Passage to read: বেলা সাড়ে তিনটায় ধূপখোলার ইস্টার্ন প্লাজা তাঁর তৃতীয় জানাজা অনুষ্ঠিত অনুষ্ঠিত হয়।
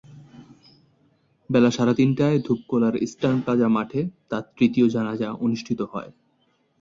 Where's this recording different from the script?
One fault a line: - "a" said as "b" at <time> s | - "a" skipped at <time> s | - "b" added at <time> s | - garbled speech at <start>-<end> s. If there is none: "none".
- "মাঠে" added at 3.7 s
- "অনুষ্ঠিত" skipped at 5.8 s